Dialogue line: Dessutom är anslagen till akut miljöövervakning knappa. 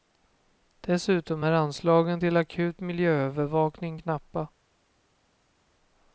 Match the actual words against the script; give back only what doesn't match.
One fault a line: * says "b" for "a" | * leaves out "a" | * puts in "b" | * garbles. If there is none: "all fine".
all fine